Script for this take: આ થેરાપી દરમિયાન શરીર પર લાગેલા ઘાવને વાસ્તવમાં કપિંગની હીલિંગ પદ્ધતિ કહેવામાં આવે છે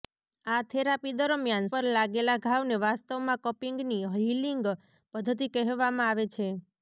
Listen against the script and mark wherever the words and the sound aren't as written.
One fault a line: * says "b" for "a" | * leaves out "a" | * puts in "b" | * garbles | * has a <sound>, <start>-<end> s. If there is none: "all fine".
* leaves out "શરીર"